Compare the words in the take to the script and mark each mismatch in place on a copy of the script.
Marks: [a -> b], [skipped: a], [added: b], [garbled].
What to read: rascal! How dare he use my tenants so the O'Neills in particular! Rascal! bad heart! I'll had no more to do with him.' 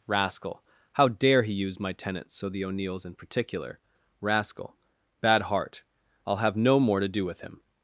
rascal! How dare he use my tenants so the O'Neills in particular! Rascal! bad heart! I'll [had -> have] no more to do with him.'